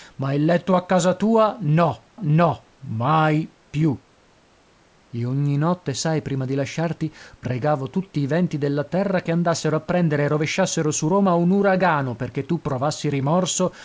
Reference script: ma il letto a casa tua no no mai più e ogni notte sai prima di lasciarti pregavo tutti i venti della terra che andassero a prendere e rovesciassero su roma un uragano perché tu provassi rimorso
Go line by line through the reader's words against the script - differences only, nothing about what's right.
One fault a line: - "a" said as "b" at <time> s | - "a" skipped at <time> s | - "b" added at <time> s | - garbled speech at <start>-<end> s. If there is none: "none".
none